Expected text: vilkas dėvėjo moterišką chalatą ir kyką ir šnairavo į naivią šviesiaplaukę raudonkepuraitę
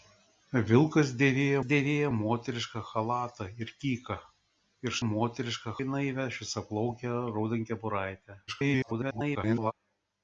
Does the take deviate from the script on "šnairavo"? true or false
true